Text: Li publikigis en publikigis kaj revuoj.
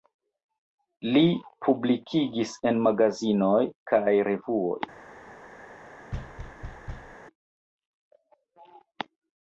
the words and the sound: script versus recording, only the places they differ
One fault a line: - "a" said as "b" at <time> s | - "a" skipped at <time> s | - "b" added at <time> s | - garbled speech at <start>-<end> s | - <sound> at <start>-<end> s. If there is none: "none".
- "publikigis" said as "magazinoj" at 2.9 s
- thud at 6.1-7.2 s